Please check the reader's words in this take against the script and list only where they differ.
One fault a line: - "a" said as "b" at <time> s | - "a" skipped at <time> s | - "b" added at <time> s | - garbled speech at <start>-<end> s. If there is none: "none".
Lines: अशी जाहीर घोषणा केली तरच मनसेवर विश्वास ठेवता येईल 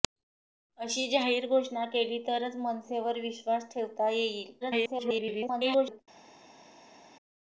- garbled speech at 4.6-6.0 s